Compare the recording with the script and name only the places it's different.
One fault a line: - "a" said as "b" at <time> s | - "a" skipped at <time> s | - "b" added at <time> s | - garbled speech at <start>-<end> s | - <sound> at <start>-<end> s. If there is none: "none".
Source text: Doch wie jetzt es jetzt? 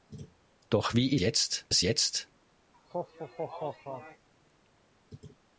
- laugh at 2.7-4.3 s